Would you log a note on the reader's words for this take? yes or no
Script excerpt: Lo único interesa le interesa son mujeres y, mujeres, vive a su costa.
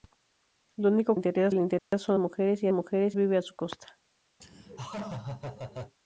no